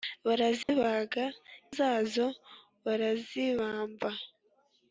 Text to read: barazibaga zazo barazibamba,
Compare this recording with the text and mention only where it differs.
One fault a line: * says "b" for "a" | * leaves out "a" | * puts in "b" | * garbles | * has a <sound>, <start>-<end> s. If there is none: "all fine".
* has a dropout, 0.6-0.7 s